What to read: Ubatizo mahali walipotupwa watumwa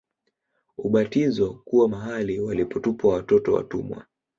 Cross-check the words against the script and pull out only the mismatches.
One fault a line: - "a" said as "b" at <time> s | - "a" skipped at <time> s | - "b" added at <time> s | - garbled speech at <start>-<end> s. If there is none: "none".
- "kuwa" added at 1.6 s
- "watoto" added at 3.1 s